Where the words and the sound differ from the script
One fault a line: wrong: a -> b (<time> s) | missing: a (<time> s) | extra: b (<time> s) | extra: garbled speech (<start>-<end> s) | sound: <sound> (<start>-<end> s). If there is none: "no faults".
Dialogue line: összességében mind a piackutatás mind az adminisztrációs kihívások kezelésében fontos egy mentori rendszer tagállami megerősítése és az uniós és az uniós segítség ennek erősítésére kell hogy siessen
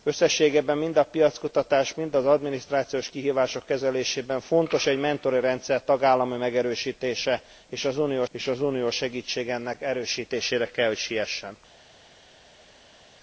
no faults